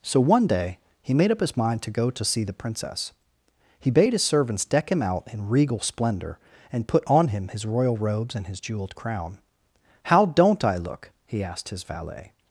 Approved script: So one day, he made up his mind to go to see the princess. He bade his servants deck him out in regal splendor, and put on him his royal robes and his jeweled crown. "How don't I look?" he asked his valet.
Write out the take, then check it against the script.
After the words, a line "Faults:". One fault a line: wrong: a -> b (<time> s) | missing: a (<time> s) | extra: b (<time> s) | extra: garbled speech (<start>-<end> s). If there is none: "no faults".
So one day, he made up his mind to go to see the princess. He bade his servants deck him out in regal splendor, and put on him his royal robes and his jeweled crown. "How don't I look?" he asked his valet.
Faults:
no faults